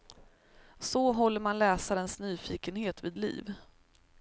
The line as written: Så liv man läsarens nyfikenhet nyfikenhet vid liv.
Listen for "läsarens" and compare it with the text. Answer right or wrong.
right